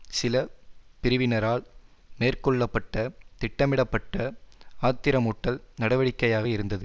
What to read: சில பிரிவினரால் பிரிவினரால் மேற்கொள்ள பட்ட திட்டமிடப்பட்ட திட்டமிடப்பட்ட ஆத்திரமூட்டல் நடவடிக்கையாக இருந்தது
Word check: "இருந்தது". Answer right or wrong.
right